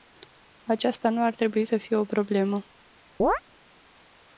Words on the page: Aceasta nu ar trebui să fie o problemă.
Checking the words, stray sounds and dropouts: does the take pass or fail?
fail